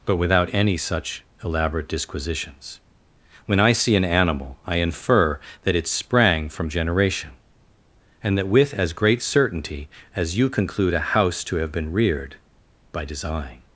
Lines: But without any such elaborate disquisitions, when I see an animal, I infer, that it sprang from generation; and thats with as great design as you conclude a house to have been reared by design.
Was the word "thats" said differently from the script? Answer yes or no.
yes